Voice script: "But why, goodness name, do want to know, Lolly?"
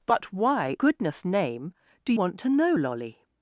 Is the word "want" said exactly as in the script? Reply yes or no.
yes